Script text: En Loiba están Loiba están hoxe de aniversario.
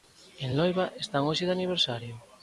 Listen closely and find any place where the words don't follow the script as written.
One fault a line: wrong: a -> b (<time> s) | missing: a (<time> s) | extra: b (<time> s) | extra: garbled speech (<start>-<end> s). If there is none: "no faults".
missing: Loiba están (1.2 s)